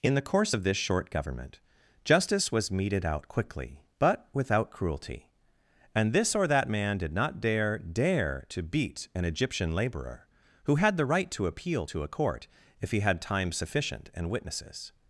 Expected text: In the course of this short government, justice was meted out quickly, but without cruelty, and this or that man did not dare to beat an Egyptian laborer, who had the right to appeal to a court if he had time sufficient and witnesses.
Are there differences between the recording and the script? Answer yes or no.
yes